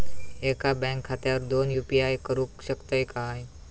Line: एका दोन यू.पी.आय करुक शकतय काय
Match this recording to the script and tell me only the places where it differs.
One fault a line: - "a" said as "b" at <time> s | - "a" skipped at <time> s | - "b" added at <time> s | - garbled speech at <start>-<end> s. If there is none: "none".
- "बँक खात्यावर" added at 0.8 s